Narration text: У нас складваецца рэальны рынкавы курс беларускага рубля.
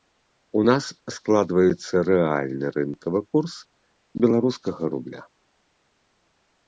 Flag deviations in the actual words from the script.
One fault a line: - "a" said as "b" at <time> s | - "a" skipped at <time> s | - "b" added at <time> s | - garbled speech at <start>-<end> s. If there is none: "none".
none